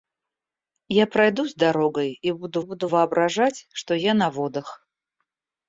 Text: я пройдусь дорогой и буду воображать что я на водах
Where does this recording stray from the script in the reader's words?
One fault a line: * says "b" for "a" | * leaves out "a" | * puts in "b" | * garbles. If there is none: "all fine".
* puts in "буду"